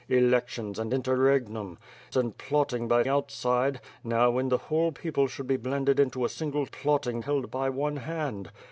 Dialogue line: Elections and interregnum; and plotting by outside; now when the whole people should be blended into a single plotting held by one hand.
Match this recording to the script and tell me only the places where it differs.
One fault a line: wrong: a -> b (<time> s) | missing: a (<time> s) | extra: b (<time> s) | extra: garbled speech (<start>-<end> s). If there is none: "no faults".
no faults